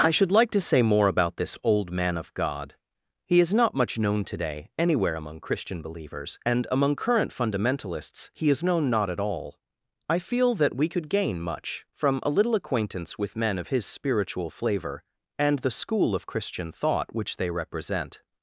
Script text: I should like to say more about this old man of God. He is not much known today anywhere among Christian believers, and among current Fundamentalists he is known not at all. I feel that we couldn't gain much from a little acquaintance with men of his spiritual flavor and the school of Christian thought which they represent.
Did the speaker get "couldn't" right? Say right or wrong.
wrong